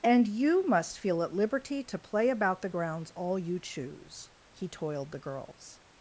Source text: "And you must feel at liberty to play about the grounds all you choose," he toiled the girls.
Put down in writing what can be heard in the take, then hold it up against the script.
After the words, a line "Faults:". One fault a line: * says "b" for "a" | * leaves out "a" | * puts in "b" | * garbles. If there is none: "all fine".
"And you must feel at liberty to play about the grounds all you choose," he toiled the girls.
Faults:
all fine